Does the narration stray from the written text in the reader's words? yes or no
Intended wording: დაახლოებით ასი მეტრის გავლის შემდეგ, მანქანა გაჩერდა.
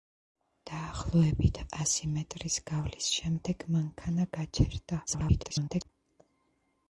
yes